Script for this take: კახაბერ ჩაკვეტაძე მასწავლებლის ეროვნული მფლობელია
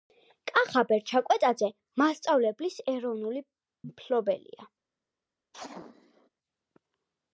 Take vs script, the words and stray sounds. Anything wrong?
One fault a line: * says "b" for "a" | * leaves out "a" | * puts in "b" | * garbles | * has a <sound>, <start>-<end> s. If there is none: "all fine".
* has a sneeze, 5.5-6.3 s